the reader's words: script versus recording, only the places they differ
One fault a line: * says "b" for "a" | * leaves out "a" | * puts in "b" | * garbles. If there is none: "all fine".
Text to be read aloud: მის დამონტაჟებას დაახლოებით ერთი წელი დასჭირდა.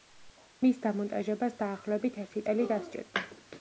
all fine